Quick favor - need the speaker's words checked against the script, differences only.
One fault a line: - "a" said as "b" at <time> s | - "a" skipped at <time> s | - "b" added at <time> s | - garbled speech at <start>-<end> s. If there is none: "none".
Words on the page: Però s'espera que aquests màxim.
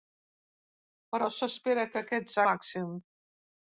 none